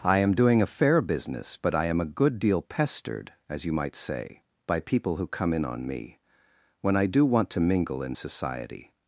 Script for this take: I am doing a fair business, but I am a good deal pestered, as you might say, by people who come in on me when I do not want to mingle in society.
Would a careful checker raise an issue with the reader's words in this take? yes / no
yes